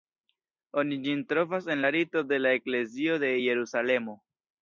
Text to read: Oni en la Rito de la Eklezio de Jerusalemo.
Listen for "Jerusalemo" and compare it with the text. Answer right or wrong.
right